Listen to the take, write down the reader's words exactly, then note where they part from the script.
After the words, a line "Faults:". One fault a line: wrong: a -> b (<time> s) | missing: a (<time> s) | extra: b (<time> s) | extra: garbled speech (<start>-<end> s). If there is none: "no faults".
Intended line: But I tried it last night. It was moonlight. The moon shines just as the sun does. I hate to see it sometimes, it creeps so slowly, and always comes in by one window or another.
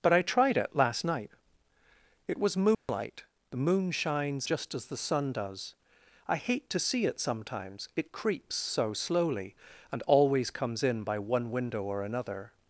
But I tried it last night. It was moonlight. The moon shines just as the sun does. I hate to see it sometimes, it creeps so slowly, and always comes in by one window or another.
Faults:
no faults